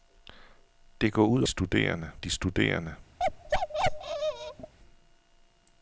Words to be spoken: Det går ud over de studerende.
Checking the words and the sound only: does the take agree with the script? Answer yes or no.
no